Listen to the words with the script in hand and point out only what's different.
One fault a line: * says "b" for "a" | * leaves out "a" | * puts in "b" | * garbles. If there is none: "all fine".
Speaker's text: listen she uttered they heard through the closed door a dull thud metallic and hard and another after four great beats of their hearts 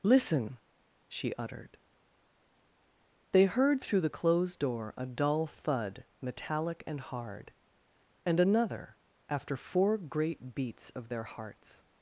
all fine